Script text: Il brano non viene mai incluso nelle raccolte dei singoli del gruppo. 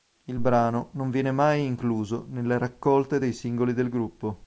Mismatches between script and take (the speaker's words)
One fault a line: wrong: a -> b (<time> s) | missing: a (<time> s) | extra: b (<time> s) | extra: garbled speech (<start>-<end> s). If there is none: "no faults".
no faults